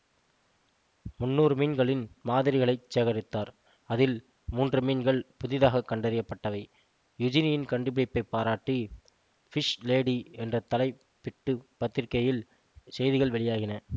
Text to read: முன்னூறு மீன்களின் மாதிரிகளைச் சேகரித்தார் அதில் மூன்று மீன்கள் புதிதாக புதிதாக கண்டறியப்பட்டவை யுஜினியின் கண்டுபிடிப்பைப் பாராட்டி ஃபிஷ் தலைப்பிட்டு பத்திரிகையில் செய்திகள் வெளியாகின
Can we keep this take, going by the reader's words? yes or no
no